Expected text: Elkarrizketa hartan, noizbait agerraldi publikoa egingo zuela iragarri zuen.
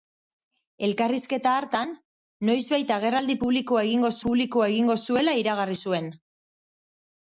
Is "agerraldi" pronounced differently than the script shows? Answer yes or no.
no